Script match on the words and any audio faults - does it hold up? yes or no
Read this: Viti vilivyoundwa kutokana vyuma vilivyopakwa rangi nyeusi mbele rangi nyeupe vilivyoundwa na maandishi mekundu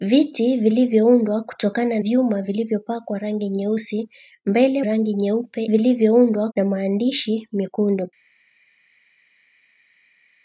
yes